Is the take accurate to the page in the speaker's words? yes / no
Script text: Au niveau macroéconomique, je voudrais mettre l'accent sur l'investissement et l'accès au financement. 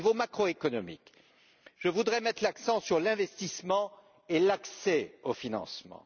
yes